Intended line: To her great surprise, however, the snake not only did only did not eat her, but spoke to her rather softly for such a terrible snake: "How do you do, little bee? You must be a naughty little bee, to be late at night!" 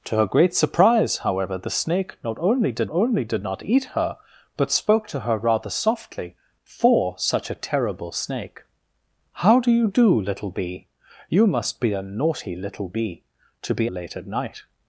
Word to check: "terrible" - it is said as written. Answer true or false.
true